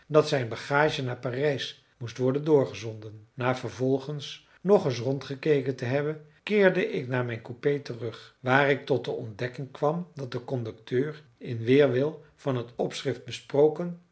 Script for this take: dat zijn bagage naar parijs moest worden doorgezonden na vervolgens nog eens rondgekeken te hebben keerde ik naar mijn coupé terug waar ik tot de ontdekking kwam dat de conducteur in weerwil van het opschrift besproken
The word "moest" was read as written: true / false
true